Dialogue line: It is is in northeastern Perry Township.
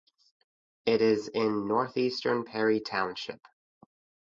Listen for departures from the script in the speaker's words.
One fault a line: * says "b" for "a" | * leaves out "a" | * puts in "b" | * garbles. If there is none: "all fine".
* leaves out "is"